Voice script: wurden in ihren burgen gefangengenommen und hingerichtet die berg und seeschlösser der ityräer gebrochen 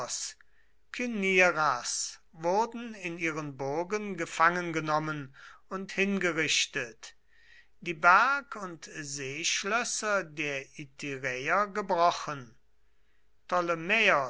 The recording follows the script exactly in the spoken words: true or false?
true